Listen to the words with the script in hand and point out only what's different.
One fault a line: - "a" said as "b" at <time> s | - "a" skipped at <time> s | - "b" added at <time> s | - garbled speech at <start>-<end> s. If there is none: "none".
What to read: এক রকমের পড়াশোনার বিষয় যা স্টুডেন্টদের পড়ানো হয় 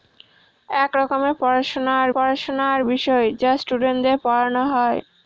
- "পড়াশোনার" added at 2.1 s